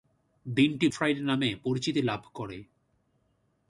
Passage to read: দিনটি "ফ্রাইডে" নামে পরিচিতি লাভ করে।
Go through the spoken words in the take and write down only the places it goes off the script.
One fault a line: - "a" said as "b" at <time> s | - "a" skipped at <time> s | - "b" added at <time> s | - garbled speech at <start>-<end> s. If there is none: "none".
none